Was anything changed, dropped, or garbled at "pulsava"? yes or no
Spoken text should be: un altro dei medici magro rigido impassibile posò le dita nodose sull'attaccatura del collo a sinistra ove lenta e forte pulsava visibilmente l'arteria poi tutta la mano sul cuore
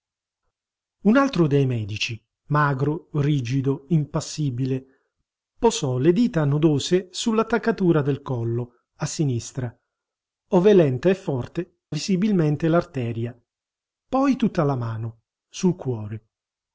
yes